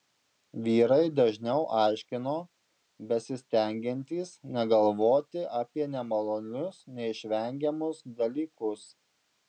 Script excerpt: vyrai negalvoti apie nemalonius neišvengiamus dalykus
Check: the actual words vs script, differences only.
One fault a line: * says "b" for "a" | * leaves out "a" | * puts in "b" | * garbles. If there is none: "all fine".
* puts in "dažniau aiškino besistengiantys"